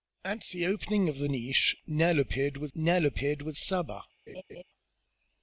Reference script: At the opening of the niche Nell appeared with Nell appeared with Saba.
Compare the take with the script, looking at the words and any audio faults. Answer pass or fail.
fail